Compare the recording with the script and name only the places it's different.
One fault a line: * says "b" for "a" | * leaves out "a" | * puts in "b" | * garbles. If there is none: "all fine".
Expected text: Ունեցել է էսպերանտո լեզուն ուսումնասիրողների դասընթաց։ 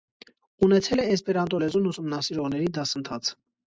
all fine